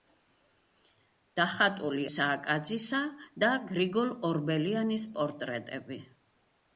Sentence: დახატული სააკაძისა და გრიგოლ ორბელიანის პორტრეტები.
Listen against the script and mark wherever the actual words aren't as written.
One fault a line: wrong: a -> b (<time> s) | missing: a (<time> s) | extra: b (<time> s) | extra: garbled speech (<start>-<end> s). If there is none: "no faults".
no faults